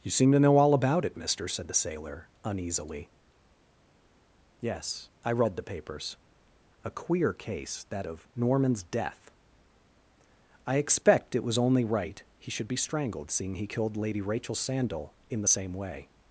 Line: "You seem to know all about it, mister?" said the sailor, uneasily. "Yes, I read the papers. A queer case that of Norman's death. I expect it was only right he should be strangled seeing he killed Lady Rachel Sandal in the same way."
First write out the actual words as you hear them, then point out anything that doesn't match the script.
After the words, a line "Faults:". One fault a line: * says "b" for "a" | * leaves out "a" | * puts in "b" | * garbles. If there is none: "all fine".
"You seem to know all about it, mister?" said the sailor, uneasily. "Yes, I read the papers. A queer case that of Norman's death. I expect it was only right he should be strangled seeing he killed Lady Rachel Sandal in the same way."
Faults:
all fine